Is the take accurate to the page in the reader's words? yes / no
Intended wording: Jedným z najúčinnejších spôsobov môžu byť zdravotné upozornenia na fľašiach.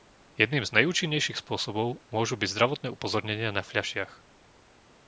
yes